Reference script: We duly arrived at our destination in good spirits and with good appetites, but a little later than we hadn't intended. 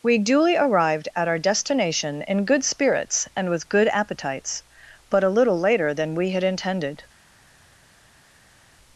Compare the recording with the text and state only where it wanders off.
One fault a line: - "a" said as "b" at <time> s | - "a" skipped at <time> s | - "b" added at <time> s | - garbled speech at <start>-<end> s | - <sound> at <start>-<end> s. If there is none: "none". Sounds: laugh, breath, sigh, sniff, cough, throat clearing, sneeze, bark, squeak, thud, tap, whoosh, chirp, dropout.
- "hadn't" said as "had" at 6.3 s